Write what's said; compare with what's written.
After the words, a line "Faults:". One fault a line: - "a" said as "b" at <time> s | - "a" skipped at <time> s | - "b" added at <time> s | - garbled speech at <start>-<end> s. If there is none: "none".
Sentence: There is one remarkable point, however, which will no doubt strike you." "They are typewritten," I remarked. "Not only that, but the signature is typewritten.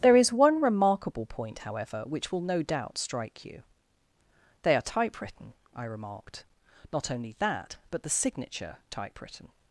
There is one remarkable point, however, which will no doubt strike you." "They are typewritten," I remarked. "Not only that, but the signature typewritten.
Faults:
- "is" skipped at 8.8 s